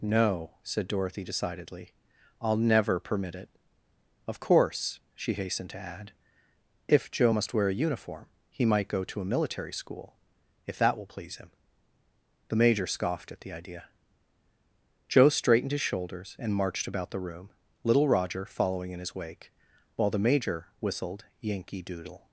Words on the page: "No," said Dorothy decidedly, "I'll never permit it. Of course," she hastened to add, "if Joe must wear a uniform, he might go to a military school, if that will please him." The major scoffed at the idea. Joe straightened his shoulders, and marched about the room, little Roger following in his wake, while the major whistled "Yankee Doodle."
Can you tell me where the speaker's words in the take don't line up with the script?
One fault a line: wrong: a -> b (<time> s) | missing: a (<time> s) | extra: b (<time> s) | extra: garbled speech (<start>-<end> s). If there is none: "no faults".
no faults